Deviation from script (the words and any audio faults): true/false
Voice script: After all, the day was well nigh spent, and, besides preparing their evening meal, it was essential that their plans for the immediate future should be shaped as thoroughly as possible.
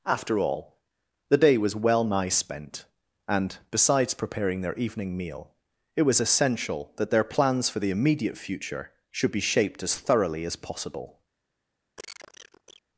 true